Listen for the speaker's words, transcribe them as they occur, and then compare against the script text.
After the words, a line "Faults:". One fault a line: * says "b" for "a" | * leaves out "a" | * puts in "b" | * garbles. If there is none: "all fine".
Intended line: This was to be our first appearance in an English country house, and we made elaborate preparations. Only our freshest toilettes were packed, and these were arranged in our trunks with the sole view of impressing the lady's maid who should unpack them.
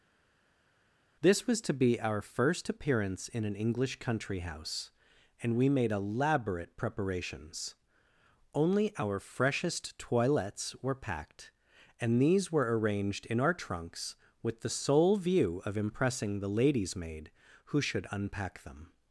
This was to be our first appearance in an English country house, and we made elaborate preparations. Only our freshest toilettes were packed, and these were arranged in our trunks with the sole view of impressing the lady's maid who should unpack them.
Faults:
all fine